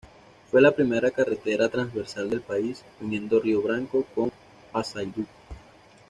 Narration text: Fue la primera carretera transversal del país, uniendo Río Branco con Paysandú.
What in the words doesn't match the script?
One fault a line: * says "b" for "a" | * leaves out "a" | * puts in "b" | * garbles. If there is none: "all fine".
all fine